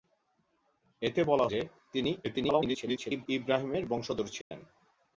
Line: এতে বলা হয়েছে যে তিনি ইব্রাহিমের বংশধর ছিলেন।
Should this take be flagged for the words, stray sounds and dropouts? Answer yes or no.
yes